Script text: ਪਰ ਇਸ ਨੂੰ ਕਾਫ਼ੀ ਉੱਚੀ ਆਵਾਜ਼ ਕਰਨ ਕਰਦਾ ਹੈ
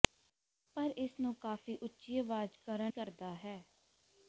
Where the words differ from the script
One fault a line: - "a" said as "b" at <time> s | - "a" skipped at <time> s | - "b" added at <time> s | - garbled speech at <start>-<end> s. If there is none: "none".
none